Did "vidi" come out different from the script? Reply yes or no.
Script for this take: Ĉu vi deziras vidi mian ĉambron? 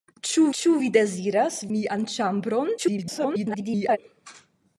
yes